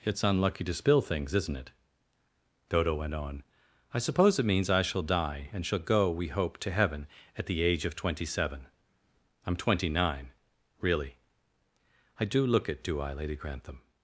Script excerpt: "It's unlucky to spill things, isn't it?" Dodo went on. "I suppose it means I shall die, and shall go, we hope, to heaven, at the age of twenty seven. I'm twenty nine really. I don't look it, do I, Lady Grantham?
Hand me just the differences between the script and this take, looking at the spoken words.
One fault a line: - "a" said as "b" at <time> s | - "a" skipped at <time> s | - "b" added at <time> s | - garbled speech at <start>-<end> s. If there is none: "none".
- "don't" said as "do" at 12.2 s